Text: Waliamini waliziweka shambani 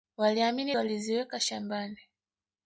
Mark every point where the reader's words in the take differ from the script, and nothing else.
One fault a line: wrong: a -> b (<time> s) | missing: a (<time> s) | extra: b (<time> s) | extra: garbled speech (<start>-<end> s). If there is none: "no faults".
no faults